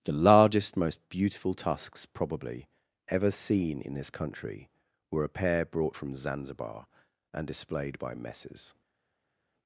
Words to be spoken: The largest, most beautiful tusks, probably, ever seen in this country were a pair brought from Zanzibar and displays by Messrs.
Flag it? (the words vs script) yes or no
yes